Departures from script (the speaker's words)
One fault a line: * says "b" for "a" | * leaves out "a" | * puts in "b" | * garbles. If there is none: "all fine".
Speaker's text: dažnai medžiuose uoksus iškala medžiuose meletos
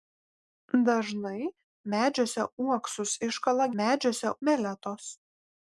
all fine